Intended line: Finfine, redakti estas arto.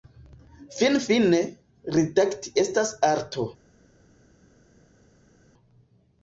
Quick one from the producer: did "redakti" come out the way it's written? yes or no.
yes